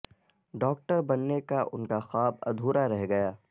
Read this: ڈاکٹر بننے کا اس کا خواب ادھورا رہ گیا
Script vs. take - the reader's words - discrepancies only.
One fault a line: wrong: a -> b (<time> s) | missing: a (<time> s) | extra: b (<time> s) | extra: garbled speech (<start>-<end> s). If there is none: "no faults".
wrong: اس -> ان (1.7 s)